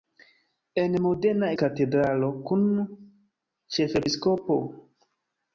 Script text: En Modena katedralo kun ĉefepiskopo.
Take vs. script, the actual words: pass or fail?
pass